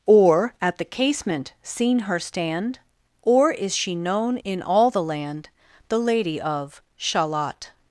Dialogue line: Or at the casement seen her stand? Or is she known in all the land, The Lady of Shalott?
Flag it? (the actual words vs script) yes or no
no